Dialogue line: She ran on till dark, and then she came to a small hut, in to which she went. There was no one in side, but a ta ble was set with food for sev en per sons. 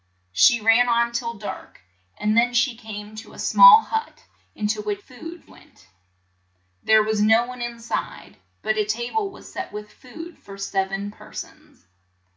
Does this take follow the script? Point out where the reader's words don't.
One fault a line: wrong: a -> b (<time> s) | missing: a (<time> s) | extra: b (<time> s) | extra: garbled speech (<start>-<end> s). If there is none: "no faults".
wrong: she -> food (5.0 s)